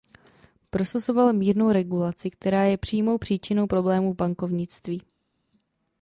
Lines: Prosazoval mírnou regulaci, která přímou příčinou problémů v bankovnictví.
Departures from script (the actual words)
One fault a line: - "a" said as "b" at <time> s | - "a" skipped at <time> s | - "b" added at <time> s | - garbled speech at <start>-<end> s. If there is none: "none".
- "je" added at 2.6 s